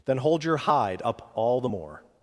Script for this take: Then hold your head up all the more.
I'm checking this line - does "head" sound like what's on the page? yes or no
no